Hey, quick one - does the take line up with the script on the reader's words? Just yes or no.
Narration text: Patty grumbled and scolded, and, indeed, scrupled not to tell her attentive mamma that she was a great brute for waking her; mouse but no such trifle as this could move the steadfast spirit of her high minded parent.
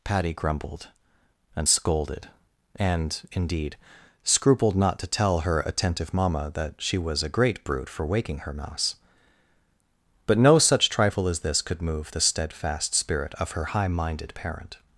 yes